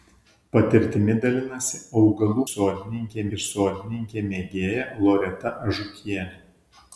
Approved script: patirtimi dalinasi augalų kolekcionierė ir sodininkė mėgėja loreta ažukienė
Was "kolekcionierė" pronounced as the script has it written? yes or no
no